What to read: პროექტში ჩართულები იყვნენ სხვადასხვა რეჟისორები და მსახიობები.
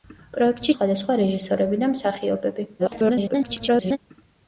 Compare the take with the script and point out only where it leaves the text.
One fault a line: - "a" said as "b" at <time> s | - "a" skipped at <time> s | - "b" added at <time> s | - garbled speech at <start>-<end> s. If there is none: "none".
- "ჩართულები იყვნენ" skipped at 0.7 s
- garbled speech at 2.8-4.0 s